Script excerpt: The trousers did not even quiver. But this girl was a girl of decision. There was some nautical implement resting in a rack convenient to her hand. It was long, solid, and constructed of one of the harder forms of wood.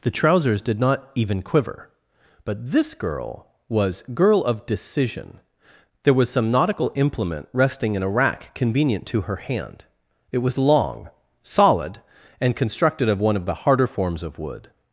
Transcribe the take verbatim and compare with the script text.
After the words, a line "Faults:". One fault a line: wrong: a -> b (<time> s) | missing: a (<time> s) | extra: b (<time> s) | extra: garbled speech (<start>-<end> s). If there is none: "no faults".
The trousers did not even quiver. But this girl was girl of decision. There was some nautical implement resting in a rack convenient to her hand. It was long, solid, and constructed of one of the harder forms of wood.
Faults:
missing: a (4.0 s)